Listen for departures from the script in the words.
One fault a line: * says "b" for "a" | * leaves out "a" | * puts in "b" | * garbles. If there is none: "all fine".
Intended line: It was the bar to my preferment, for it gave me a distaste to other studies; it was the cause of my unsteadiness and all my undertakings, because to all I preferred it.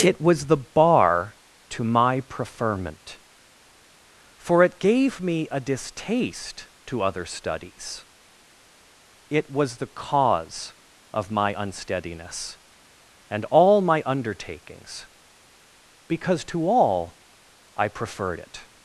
all fine